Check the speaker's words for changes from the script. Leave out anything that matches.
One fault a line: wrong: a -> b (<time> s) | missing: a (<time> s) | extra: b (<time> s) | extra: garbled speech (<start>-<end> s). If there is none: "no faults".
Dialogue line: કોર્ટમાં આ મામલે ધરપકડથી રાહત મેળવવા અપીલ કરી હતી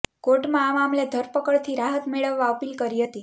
no faults